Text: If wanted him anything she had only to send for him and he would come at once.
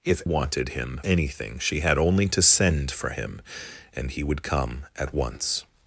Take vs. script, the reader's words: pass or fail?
pass